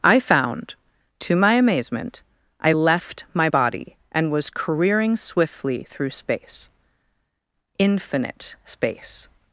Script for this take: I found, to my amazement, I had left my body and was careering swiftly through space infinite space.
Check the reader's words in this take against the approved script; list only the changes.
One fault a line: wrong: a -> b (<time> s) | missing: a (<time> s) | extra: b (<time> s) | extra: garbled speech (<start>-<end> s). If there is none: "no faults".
missing: had (2.7 s)